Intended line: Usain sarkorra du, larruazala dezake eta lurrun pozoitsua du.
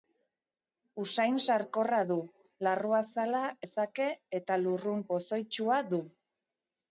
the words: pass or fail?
pass